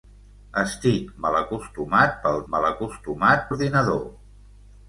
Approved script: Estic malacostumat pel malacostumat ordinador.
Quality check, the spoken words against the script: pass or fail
pass